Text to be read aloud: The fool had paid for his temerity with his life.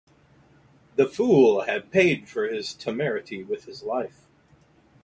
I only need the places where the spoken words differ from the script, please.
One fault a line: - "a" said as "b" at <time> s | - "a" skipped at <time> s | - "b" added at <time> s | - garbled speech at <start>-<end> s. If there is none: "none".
none